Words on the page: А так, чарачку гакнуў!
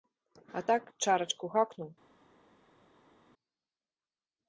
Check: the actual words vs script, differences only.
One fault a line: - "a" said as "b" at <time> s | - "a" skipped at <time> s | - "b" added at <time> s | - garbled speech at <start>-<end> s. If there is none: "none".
none